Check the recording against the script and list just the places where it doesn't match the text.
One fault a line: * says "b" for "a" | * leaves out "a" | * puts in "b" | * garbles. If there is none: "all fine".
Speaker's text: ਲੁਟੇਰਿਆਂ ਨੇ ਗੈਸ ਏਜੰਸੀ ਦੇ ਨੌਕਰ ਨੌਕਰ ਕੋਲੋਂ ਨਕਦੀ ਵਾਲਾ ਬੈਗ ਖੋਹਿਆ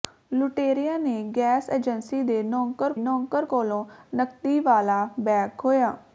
all fine